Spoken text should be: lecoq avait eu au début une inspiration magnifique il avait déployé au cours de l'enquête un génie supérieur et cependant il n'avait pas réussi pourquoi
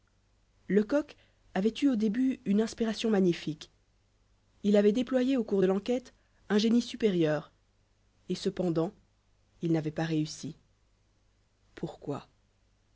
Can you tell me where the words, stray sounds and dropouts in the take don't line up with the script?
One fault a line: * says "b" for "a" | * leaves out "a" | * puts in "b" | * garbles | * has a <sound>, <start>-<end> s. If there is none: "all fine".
all fine